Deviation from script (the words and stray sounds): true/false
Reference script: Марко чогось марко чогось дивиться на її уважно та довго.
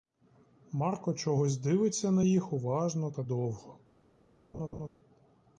true